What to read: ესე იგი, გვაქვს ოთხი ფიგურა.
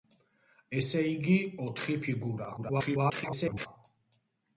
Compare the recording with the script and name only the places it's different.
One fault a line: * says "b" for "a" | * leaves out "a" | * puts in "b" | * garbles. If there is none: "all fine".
* leaves out "გვაქვს"
* garbles